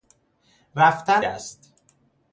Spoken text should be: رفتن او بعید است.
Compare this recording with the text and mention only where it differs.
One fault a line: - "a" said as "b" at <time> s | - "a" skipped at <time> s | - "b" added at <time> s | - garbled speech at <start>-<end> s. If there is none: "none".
- "او بعید" skipped at 1.2 s